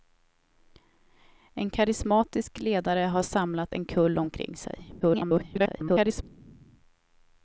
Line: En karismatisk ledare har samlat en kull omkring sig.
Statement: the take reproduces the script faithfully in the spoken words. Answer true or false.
false